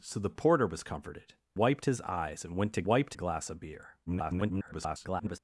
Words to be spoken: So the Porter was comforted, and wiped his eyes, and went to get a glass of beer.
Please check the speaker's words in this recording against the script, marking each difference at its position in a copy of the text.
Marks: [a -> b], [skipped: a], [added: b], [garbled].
So the Porter was comforted, [skipped: and] wiped his eyes, and went to [get -> wiped] a glass of beer. [garbled]